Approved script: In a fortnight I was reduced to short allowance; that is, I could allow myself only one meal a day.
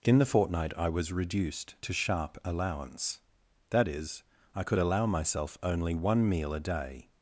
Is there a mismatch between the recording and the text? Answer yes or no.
yes